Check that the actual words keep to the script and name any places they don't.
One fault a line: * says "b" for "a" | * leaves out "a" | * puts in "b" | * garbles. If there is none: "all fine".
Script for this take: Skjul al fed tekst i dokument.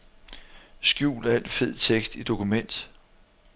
all fine